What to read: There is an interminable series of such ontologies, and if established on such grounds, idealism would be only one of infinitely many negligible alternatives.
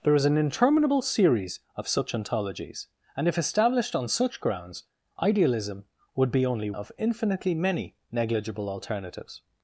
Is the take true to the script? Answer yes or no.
no